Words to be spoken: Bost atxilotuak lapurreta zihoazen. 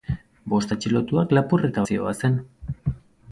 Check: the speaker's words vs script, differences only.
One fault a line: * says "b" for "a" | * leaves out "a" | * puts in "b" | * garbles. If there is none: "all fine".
all fine